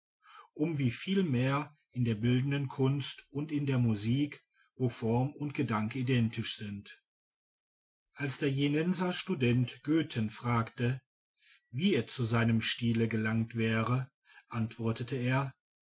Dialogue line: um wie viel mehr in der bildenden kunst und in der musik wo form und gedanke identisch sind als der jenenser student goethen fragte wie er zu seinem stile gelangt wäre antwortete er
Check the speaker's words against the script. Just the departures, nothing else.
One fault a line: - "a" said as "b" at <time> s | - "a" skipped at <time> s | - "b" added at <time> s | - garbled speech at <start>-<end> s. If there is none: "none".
none